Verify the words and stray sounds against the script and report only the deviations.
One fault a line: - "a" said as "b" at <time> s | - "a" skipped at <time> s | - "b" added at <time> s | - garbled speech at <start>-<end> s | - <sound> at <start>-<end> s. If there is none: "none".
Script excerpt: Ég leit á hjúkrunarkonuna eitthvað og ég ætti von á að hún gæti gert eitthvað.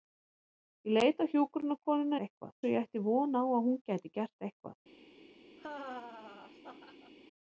- laugh at 5.6-7.1 s